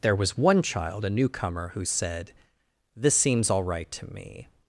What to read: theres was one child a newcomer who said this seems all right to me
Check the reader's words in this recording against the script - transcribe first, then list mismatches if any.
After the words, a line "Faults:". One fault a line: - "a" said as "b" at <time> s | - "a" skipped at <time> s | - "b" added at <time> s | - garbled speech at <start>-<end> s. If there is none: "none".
there was one child a newcomer who said this seems all right to me
Faults:
- "theres" said as "there" at 0.0 s